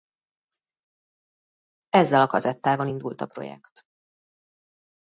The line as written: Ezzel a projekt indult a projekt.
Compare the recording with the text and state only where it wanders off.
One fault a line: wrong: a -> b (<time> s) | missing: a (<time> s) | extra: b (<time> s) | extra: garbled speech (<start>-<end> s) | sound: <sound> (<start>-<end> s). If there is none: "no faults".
wrong: projekt -> kazettával (2.2 s)